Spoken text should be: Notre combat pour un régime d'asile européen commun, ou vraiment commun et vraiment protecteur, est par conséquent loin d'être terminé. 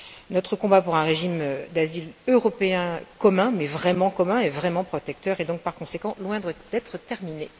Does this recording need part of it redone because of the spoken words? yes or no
yes